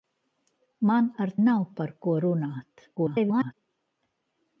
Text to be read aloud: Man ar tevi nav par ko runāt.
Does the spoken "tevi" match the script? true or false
false